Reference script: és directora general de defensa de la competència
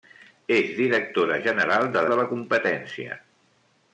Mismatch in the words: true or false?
true